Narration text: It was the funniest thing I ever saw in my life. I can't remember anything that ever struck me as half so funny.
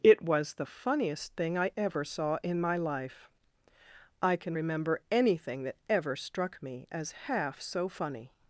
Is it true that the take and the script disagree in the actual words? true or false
true